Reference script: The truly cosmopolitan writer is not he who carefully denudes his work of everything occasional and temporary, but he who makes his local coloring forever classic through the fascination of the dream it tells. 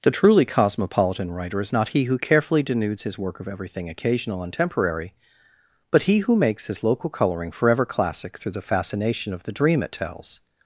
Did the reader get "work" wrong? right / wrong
right